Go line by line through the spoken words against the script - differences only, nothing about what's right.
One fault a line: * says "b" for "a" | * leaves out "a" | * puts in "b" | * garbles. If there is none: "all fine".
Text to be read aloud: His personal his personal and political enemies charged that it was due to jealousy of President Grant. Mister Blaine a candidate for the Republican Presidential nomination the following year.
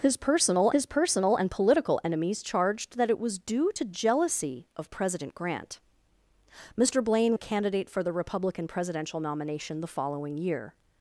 all fine